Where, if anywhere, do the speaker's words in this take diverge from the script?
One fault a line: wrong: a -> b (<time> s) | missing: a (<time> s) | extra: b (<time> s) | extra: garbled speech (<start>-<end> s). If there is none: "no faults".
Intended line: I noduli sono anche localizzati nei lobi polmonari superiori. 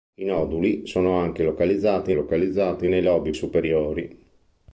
extra: localizzati (2.1 s)
missing: polmonari (3.3 s)